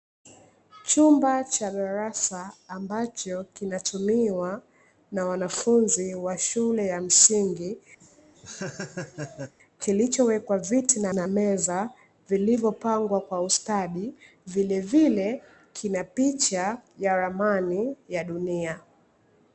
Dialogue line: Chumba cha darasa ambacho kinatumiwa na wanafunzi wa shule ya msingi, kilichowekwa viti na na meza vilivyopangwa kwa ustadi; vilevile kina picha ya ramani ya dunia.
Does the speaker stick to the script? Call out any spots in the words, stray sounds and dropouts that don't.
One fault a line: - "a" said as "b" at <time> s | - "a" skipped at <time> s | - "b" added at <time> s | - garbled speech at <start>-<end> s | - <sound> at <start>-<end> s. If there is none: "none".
- laugh at 8.0-9.5 s